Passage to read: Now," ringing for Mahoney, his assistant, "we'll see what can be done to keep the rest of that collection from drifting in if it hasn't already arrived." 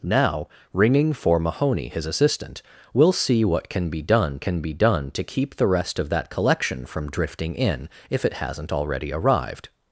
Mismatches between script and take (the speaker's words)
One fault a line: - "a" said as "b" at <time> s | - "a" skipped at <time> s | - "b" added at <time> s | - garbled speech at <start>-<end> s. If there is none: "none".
- "can be done" added at 4.4 s